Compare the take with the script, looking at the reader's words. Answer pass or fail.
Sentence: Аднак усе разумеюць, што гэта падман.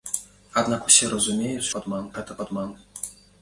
fail